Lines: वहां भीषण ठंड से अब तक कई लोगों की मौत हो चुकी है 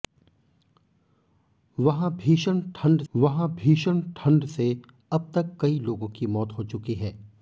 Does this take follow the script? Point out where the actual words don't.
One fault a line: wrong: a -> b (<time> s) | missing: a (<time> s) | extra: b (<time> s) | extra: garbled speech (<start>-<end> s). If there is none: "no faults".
extra: वहां भीषण ठंड (3.1 s)